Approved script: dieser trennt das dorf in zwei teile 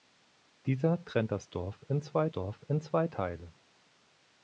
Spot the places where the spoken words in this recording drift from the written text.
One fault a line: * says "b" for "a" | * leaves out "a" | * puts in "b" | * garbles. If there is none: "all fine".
* puts in "dorf in zwei"